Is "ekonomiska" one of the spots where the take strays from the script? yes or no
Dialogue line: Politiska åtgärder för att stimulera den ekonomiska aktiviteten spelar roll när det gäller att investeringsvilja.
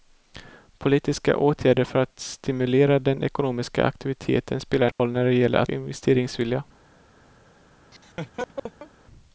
no